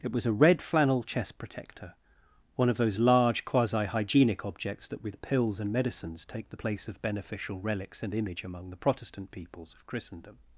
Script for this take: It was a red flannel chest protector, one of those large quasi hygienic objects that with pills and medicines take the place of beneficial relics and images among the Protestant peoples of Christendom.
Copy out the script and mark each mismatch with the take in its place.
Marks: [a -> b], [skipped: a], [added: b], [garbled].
It was a red flannel chest protector, one of those large quasi hygienic objects that with pills and medicines take the place of beneficial relics and [images -> image] among the Protestant peoples of Christendom.